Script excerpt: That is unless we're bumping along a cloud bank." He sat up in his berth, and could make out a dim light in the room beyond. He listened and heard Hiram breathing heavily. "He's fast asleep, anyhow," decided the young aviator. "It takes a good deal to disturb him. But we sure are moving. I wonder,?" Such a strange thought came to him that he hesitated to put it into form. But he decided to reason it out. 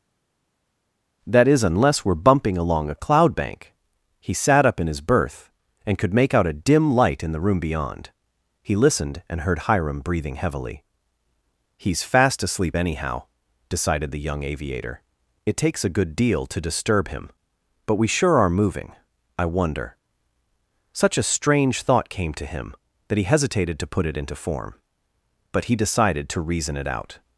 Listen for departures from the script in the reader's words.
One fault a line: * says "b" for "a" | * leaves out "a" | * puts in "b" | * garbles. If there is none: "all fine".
all fine